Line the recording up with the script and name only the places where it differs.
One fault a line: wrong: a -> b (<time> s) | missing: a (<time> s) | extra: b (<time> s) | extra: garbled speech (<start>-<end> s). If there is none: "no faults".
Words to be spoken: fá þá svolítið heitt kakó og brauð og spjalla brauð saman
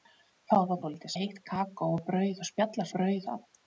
no faults